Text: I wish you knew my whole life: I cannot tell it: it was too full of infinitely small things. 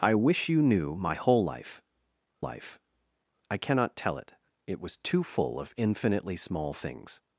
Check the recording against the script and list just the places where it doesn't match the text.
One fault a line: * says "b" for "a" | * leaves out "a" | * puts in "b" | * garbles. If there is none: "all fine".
* puts in "life"